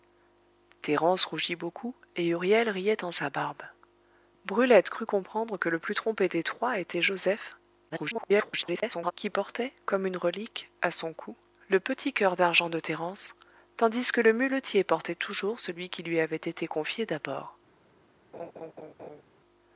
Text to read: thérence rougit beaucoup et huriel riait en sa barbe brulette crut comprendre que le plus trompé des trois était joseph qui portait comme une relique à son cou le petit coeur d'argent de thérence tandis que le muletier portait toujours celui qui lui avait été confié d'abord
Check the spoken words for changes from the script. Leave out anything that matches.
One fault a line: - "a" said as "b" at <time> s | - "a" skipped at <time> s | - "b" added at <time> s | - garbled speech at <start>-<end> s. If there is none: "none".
- garbled speech at 7.9-9.1 s